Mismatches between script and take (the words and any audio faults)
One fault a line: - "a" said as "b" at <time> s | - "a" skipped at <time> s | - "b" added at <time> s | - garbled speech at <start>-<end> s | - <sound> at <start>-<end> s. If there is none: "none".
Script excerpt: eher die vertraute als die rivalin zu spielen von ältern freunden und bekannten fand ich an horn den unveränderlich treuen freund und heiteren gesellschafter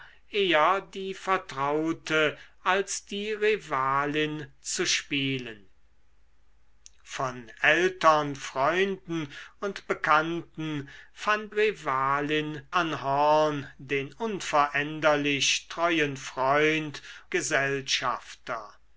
- "ich" said as "rivalin" at 11.5 s
- "und heiteren" skipped at 17.0 s